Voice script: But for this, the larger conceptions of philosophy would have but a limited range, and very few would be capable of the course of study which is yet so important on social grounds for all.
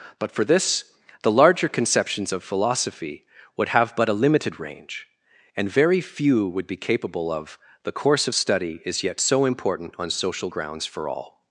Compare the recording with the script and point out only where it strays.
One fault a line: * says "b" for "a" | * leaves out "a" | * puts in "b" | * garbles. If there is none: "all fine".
* leaves out "which"